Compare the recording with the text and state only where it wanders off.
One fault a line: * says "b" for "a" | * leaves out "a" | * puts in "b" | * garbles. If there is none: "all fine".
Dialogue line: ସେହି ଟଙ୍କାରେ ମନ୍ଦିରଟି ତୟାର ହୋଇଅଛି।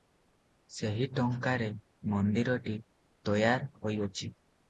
all fine